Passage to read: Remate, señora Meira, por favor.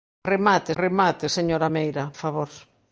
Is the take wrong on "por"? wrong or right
wrong